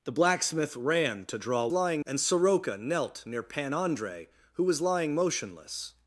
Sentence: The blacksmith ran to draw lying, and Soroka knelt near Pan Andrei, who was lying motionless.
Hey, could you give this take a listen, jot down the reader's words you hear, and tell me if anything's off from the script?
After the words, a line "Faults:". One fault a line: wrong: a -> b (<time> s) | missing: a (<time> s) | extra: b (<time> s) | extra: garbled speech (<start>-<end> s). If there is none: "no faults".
The blacksmith ran to draw lying, and Soroka knelt near Pan Andrei, who was lying motionless.
Faults:
no faults